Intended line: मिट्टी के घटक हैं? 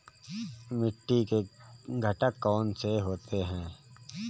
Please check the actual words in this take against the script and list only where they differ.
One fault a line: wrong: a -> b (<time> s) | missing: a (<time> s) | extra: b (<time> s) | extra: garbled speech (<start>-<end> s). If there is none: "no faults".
extra: कौन से होते (2.4 s)